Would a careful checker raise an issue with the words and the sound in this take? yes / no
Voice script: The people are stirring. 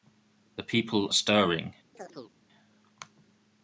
yes